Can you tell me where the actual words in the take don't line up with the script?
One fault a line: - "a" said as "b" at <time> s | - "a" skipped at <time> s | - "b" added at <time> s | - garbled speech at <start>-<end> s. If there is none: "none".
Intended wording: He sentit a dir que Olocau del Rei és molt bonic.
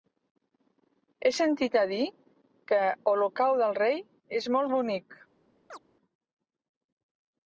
none